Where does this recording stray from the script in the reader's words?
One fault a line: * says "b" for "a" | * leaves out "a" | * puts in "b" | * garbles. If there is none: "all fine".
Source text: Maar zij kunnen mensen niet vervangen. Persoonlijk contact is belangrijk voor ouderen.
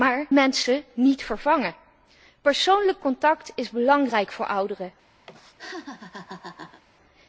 * leaves out "zij kunnen"